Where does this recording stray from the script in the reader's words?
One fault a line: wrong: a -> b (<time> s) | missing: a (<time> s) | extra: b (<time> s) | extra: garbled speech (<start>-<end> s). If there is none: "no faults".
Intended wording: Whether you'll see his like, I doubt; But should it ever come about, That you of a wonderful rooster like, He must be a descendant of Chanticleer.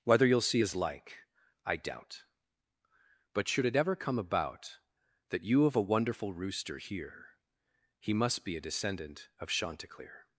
wrong: like -> hear (6.8 s)